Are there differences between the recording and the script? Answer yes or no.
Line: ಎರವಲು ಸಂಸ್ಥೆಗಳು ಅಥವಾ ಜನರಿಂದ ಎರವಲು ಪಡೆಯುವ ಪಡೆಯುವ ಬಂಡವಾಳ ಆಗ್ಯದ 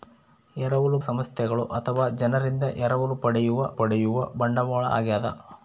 no